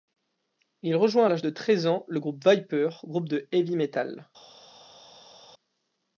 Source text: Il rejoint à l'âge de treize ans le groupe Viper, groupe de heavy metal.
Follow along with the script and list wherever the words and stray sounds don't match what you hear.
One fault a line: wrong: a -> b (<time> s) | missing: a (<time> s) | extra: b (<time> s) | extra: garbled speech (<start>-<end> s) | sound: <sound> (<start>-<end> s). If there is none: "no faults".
no faults